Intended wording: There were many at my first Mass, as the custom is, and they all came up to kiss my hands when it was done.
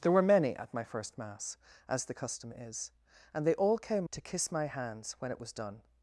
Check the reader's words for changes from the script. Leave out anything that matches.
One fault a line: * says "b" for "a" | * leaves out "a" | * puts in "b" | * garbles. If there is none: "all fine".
* leaves out "up"